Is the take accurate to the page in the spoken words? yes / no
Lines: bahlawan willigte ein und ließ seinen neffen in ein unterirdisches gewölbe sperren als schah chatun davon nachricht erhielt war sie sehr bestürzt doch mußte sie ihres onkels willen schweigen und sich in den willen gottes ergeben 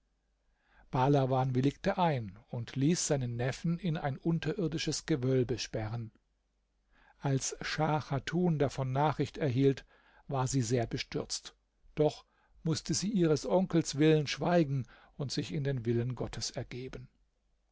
yes